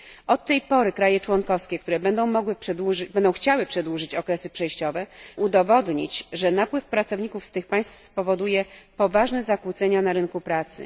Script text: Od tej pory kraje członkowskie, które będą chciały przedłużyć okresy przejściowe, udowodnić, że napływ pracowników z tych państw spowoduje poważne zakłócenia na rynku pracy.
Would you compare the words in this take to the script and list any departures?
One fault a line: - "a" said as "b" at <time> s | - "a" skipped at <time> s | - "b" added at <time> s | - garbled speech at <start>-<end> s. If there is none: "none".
none